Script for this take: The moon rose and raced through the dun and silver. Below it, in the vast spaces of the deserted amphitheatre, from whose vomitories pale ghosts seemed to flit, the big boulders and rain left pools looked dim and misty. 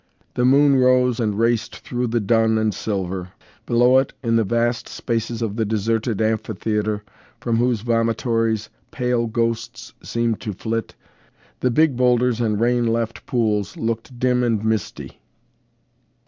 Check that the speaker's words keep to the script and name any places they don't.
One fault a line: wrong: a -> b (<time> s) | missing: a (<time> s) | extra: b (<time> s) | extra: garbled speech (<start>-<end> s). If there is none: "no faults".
no faults